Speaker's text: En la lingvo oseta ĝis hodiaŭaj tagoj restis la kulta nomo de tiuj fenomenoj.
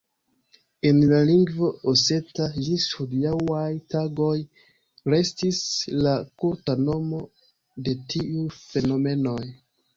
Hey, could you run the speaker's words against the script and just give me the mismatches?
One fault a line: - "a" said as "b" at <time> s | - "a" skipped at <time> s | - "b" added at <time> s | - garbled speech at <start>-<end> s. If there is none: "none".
none